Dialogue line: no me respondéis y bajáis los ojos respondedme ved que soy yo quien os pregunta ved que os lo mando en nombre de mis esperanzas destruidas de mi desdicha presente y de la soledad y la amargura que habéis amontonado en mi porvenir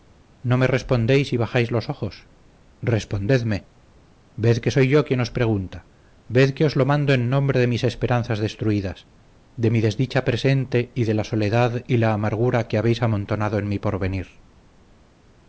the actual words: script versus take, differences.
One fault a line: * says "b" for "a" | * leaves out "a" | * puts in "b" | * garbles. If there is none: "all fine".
all fine